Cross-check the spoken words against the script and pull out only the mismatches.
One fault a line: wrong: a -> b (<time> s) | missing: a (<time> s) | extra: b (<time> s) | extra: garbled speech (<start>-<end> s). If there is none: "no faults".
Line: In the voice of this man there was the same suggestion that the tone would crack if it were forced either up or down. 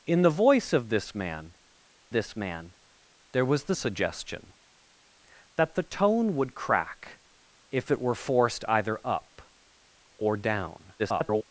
extra: this man (2.1 s)
missing: same (3.7 s)
extra: garbled speech (11.0-11.4 s)